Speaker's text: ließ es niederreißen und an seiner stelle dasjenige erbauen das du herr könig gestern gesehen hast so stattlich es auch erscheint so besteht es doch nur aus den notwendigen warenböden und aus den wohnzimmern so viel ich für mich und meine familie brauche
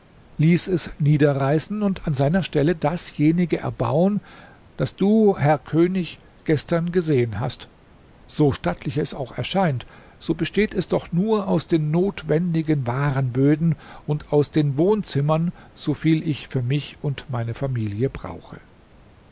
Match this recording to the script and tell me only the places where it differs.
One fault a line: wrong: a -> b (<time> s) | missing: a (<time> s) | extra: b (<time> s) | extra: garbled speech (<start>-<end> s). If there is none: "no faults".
no faults